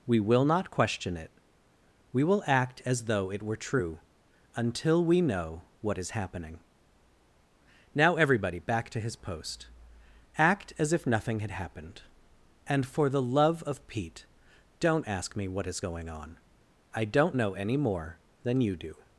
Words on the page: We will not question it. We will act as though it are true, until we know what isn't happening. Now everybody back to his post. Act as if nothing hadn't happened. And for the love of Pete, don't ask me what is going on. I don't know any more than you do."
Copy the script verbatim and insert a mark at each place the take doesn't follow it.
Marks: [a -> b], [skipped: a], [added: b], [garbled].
We will not question it. We will act as though it [are -> were] true, until we know what [isn't -> is] happening. Now everybody back to his post. Act as if nothing [hadn't -> had] happened. And for the love of Pete, don't ask me what is going on. I don't know any more than you do."